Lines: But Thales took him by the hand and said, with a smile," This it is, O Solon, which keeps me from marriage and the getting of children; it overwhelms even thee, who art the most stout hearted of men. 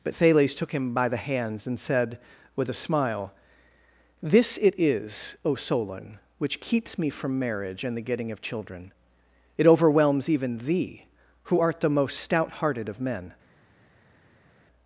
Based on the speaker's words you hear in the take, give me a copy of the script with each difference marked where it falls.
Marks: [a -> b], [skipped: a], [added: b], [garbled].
But Thales took him by the [hand -> hands] and said, with a smile," This it is, O Solon, which keeps me from marriage and the getting of children; it overwhelms even thee, who art the most stout hearted of men.